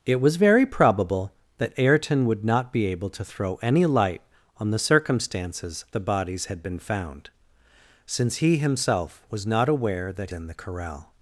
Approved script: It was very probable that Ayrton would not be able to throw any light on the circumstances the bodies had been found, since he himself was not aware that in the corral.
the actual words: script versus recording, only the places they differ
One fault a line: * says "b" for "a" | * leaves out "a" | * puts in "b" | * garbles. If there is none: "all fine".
all fine